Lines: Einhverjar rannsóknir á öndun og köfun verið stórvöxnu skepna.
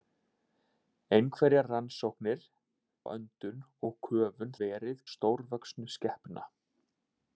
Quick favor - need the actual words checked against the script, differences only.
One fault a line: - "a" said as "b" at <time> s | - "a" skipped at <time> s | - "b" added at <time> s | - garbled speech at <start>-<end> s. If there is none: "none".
none